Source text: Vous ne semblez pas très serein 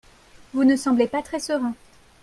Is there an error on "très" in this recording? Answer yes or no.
no